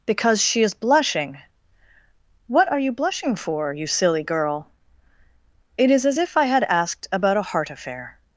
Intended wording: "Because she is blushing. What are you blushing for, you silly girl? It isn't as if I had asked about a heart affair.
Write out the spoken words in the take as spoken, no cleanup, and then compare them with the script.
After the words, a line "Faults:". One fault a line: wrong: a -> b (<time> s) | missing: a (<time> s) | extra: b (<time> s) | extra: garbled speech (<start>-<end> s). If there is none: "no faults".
"Because she is blushing. What are you blushing for, you silly girl? It is as if I had asked about a heart affair.
Faults:
wrong: isn't -> is (5.9 s)